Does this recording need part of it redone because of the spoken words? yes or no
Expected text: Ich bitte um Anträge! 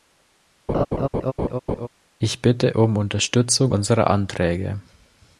yes